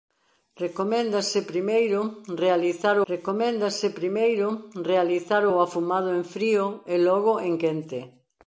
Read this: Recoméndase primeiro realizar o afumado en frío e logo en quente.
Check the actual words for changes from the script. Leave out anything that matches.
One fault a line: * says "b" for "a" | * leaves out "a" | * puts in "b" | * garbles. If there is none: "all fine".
* puts in "recoméndase primeiro realizar"